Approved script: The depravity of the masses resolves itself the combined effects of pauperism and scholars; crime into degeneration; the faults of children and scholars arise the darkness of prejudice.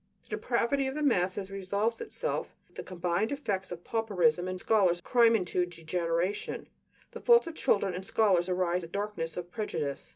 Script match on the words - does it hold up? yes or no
yes